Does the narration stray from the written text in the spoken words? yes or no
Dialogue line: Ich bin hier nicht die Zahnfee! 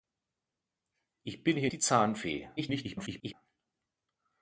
yes